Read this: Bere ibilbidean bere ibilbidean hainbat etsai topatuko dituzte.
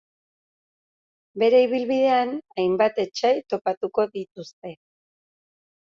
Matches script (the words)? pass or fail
fail